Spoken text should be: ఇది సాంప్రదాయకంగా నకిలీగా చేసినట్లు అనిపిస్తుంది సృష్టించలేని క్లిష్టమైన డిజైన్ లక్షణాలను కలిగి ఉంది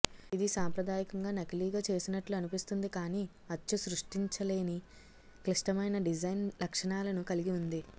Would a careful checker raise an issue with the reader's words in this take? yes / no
yes